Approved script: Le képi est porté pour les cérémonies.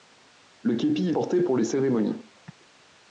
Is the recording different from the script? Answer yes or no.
no